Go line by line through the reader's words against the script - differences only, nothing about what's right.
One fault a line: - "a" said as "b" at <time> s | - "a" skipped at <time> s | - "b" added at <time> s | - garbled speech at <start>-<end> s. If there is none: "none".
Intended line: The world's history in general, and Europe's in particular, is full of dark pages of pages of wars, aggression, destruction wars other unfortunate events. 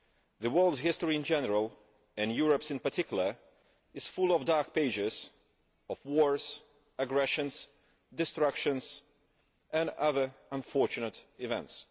- "pages of" skipped at 6.0 s
- "wars" said as "and" at 9.7 s